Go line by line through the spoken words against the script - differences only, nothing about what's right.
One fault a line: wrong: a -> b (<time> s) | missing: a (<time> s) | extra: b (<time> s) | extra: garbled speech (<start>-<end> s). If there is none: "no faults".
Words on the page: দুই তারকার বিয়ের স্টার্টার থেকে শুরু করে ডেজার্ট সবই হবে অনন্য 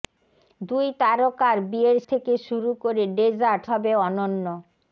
missing: স্টার্টার (2.0 s)
missing: সবই (3.6 s)